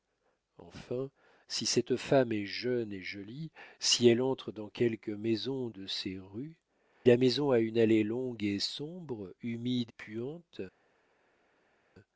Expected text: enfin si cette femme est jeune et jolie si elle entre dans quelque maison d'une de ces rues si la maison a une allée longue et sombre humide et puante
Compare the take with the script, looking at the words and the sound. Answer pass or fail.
fail